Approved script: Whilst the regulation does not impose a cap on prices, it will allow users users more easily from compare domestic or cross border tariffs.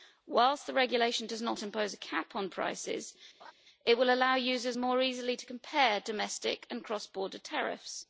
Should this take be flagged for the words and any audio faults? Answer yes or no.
yes